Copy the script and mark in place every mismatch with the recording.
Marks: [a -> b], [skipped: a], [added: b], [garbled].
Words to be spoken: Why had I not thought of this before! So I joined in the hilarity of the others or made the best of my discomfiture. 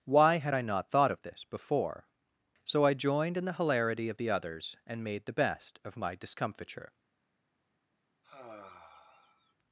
Why had I not thought of this before! So I joined in the hilarity of the others [or -> and] made the best of my discomfiture.